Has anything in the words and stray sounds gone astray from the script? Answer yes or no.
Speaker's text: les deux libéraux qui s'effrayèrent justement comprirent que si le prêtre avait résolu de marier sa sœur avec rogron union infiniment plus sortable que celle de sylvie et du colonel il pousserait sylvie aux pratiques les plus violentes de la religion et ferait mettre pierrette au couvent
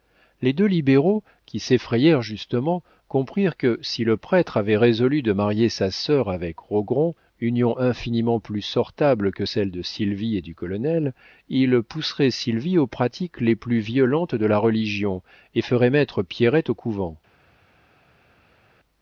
no